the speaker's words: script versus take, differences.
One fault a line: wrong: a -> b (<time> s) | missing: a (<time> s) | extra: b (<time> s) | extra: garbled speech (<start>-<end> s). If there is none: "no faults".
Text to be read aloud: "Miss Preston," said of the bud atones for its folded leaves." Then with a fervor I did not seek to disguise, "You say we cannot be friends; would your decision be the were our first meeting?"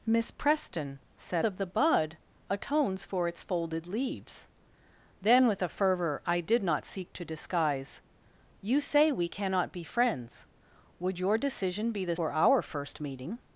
no faults